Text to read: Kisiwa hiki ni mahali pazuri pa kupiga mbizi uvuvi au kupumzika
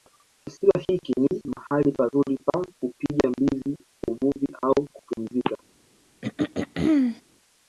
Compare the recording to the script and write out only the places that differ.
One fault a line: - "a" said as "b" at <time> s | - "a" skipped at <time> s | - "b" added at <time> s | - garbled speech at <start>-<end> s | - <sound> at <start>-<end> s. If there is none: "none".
- throat clearing at 6.2-7.2 s